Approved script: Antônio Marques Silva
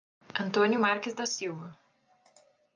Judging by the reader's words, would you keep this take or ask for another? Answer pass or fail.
fail